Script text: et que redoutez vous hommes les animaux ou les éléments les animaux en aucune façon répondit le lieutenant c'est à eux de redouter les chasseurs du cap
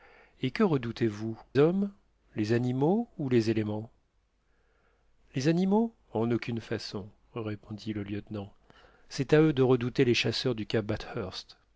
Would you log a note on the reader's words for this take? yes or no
no